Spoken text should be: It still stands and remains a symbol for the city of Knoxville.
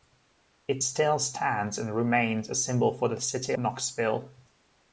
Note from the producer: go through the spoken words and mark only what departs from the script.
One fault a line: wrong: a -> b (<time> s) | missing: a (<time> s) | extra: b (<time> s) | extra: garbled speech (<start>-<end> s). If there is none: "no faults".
missing: of (3.5 s)